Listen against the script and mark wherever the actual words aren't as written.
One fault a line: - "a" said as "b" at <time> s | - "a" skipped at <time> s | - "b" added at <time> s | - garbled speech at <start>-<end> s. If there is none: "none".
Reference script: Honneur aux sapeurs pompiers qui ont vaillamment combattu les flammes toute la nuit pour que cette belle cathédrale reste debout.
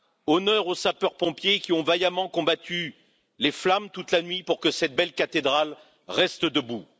none